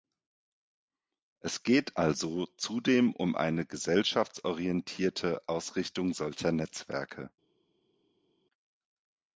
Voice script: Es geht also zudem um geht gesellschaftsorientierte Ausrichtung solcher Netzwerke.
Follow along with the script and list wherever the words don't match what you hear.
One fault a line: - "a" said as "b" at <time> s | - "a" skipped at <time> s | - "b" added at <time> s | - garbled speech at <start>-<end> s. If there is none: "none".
- "geht" said as "eine" at 3.4 s